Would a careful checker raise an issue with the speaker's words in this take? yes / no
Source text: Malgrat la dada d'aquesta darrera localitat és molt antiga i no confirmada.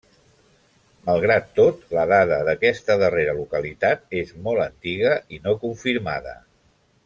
yes